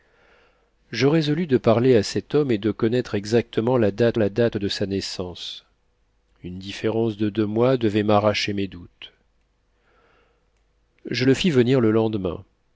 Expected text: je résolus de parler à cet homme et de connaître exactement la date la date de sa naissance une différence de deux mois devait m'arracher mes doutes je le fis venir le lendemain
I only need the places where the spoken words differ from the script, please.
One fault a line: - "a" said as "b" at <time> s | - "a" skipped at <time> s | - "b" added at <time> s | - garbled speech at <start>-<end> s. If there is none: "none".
none